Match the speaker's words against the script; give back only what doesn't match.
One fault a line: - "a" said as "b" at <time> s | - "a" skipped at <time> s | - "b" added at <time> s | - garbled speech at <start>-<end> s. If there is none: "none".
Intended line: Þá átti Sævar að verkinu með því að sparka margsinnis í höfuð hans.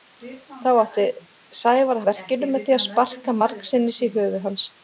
none